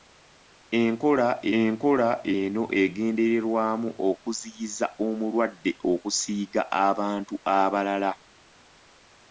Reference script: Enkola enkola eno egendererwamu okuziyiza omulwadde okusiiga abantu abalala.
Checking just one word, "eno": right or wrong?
right